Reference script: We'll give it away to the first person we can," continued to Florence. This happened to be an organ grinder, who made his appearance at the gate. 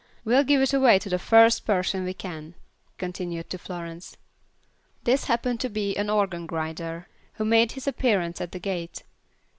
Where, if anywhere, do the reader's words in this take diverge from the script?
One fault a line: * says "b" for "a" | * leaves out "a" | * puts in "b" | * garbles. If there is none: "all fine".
all fine